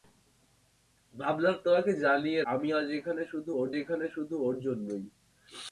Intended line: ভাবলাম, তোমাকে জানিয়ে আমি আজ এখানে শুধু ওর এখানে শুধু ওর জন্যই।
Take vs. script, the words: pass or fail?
pass